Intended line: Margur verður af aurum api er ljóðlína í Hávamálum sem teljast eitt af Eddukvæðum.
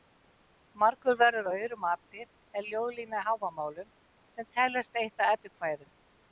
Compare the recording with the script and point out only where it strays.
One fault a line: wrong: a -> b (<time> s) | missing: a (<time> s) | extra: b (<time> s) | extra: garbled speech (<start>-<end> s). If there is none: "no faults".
no faults